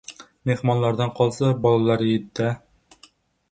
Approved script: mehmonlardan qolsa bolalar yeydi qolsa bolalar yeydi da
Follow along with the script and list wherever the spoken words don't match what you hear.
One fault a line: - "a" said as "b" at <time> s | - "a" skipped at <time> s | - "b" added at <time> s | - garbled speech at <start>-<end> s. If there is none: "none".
- "qolsa bolalar yeydi" skipped at 2.3 s